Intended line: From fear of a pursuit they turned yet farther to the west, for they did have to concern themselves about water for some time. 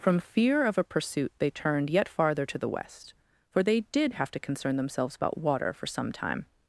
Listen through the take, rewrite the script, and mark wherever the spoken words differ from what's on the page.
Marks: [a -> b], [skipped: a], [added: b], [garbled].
From fear of a pursuit they turned yet farther to the west, for they did have to concern themselves about water for some time.